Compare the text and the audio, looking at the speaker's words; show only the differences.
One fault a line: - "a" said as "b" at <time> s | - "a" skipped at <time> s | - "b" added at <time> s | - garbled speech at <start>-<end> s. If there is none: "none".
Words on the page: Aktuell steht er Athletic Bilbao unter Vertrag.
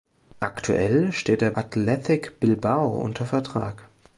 none